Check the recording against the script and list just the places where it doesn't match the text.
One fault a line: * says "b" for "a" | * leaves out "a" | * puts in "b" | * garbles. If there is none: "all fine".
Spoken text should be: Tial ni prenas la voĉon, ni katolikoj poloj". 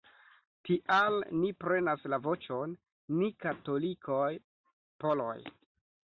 all fine